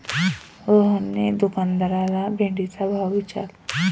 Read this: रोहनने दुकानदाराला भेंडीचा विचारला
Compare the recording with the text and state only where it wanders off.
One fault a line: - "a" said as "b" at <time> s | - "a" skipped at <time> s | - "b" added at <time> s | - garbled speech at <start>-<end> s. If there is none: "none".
- "भाव" added at 2.9 s